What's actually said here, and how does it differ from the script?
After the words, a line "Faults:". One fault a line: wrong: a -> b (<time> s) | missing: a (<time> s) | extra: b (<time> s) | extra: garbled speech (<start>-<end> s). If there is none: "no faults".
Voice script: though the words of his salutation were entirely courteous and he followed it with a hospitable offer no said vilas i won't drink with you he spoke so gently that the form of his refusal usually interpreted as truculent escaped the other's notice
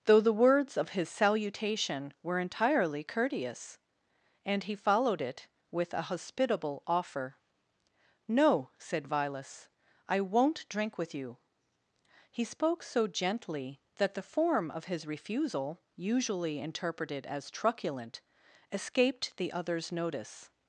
though the words of his salutation were entirely courteous and he followed it with a hospitable offer no said vilas i won't drink with you he spoke so gently that the form of his refusal usually interpreted as truculent escaped the other's notice
Faults:
no faults